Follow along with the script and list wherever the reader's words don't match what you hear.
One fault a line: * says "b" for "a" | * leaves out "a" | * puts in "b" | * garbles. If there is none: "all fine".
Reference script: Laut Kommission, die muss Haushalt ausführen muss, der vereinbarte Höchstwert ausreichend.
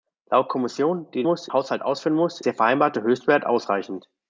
all fine